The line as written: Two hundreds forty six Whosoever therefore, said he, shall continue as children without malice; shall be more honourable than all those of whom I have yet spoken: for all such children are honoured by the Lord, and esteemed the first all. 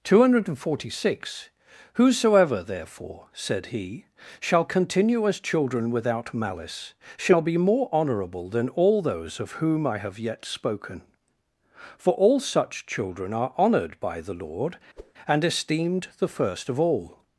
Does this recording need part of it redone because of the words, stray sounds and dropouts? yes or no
yes